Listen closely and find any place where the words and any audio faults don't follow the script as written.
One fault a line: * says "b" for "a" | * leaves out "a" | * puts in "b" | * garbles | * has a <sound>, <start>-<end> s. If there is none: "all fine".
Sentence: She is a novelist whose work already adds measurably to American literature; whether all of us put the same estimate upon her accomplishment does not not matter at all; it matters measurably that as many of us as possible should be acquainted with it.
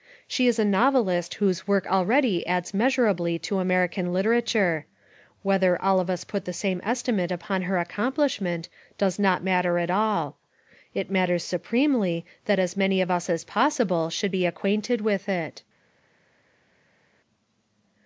* leaves out "not"
* says "supremely" for "measurably"